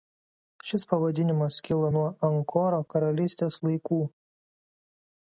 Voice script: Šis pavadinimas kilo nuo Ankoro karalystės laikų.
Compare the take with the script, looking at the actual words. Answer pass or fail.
pass